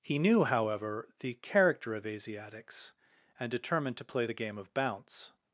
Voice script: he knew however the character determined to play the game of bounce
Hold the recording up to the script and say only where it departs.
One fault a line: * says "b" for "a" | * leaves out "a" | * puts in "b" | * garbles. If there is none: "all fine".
* puts in "of asiatics and"